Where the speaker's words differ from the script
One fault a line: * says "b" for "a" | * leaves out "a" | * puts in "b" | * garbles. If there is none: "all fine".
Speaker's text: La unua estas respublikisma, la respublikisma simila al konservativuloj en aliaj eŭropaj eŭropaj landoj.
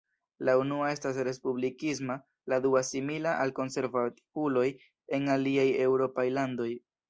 * says "dua" for "respublikisma"
* leaves out "eŭropaj"